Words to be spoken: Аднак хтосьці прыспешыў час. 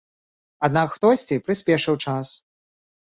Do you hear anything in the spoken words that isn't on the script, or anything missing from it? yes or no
no